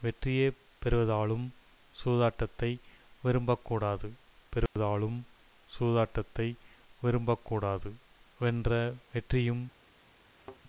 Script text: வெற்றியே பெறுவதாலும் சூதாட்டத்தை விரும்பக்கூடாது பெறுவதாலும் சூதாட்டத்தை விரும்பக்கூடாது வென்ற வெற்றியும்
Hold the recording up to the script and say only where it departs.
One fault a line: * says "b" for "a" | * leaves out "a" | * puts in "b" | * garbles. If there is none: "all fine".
all fine